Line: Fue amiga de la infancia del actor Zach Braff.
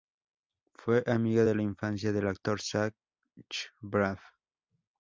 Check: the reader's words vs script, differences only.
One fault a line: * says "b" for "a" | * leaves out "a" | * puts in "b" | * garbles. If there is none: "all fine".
all fine